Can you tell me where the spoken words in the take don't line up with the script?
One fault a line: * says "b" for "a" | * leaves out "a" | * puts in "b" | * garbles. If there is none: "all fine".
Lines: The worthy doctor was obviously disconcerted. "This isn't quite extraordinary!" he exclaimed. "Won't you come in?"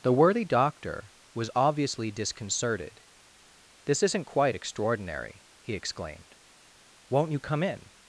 all fine